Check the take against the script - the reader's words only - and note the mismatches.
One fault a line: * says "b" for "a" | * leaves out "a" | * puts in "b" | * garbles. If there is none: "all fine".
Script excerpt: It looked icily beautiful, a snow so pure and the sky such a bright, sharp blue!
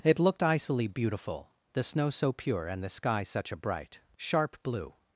* says "the" for "a"